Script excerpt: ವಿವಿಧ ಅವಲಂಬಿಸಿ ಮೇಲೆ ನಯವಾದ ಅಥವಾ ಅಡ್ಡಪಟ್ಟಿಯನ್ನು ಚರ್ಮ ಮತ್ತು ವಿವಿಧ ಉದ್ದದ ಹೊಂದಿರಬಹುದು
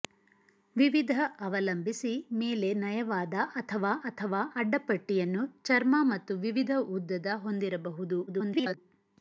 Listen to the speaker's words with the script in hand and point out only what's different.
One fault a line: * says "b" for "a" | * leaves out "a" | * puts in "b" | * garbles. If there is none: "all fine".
* puts in "ಅಥವಾ"
* garbles